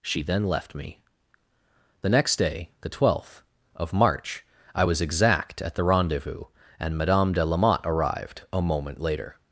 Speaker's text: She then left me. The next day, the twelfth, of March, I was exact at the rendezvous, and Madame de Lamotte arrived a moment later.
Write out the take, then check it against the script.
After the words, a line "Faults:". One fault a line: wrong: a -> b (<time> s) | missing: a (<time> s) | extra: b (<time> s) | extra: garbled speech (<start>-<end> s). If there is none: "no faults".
She then left me. The next day, the twelfth, of March, I was exact at the rendezvous, and Madame de Lamotte arrived a moment later.
Faults:
no faults